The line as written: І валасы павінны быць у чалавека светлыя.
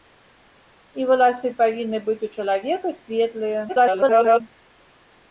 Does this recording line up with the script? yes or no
no